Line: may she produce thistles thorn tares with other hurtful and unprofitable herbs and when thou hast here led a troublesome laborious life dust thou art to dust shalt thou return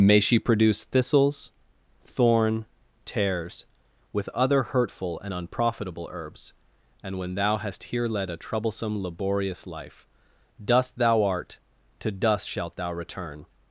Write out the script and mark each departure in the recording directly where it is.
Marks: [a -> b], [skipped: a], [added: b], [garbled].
may she produce thistles thorn tares with other hurtful and unprofitable herbs and when thou hast here led a troublesome laborious life dust thou art to dust shalt thou return